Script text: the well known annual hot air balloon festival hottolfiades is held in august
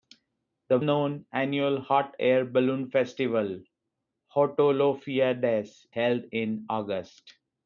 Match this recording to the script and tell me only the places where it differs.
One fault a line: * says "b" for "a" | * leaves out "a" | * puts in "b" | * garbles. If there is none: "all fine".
* leaves out "well"
* leaves out "is"